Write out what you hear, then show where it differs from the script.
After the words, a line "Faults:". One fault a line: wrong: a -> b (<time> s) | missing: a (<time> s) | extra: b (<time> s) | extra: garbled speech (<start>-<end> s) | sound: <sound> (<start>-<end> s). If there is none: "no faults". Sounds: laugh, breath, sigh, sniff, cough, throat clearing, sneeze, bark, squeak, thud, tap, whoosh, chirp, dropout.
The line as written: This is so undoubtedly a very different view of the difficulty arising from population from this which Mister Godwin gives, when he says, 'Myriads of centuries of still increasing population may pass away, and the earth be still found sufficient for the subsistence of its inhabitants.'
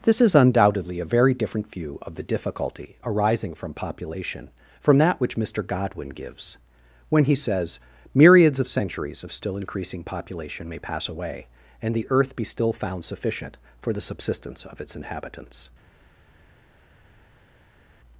This is undoubtedly a very different view of the difficulty arising from population from that which Mister Godwin gives, when he says, 'Myriads of centuries of still increasing population may pass away, and the earth be still found sufficient for the subsistence of its inhabitants.'
Faults:
missing: so (0.3 s)
wrong: this -> that (5.0 s)